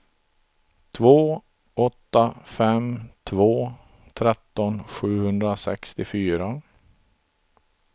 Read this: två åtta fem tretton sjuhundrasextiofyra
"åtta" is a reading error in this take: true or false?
false